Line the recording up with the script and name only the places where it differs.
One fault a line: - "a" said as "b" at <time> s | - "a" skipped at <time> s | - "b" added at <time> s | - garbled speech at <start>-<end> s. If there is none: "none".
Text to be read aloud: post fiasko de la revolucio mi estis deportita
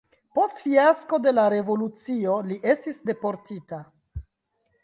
- "mi" said as "li" at 2.5 s